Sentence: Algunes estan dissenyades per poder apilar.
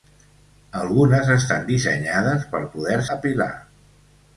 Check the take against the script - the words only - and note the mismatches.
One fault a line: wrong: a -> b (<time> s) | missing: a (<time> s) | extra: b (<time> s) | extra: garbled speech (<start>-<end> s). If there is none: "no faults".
no faults